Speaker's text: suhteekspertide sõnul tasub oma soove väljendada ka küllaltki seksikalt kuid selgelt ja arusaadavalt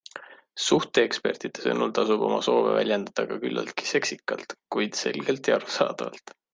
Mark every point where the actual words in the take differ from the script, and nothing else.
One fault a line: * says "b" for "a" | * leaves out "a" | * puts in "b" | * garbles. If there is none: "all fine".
all fine